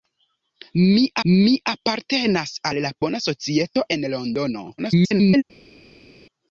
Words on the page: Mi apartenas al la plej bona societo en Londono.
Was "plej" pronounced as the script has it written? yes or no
no